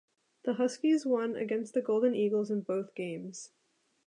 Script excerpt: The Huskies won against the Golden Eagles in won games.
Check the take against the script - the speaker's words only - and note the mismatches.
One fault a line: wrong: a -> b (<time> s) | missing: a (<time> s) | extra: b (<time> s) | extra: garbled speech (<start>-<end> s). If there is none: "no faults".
wrong: won -> both (2.6 s)